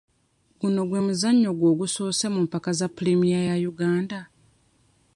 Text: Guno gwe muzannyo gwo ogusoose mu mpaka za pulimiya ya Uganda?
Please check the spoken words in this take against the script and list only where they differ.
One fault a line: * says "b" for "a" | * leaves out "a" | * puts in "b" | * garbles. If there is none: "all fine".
all fine